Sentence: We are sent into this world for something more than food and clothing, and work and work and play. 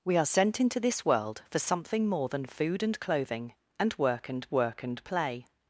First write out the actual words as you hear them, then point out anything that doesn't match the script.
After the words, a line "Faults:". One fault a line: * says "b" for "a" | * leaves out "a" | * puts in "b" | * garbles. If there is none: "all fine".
We are sent into this world for something more than food and clothing, and work and work and play.
Faults:
all fine